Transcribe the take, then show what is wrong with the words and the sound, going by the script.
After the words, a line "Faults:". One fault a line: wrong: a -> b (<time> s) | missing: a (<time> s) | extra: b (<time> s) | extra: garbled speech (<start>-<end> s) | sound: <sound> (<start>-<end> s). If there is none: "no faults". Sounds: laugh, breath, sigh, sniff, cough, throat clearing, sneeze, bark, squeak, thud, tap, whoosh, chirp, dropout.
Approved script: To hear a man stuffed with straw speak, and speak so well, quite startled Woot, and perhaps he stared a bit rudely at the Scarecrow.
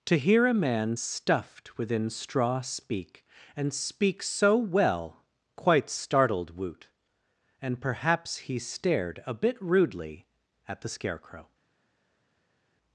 To hear a man stuffed within straw speak, and speak so well, quite startled Woot, and perhaps he stared a bit rudely at the Scarecrow.
Faults:
wrong: with -> within (1.8 s)